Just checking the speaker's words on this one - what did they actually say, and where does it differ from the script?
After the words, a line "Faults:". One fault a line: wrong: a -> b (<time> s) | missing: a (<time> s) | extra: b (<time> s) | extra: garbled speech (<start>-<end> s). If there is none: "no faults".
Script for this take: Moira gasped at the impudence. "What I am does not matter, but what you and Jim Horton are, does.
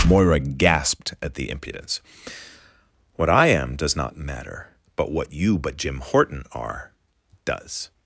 Moira gasped at the impudence. "What I am does not matter, but what you but Jim Horton are, does.
Faults:
wrong: and -> but (5.6 s)